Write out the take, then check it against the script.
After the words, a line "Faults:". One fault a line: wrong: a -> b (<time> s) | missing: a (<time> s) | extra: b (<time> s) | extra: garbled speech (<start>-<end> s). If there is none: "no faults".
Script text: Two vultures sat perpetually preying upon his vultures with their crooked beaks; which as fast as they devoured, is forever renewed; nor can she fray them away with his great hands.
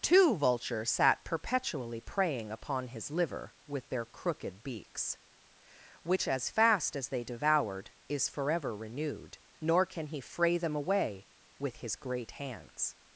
Two vultures sat perpetually preying upon his liver with their crooked beaks; which as fast as they devoured, is forever renewed; nor can he fray them away with his great hands.
Faults:
wrong: vultures -> liver (3.1 s)
wrong: she -> he (10.1 s)